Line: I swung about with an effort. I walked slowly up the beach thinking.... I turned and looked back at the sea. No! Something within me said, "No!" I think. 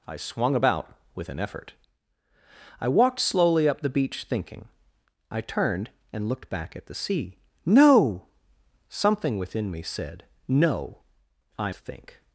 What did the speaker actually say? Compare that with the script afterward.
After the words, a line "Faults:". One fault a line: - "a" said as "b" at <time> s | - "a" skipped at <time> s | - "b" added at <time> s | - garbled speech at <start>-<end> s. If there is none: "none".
I swung about with an effort. I walked slowly up the beach thinking.... I turned and looked back at the sea. No! Something within me said, "No!" I think.
Faults:
none